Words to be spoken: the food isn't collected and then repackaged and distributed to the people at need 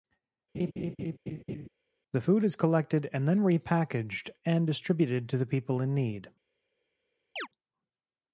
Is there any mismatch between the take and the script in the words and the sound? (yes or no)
yes